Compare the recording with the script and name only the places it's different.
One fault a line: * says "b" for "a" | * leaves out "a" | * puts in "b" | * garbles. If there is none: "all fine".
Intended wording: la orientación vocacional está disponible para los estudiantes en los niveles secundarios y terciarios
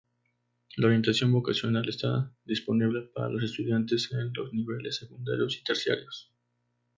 all fine